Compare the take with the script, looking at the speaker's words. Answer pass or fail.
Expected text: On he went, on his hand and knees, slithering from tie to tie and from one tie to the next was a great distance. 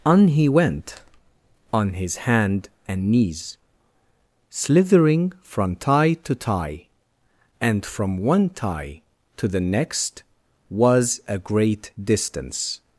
pass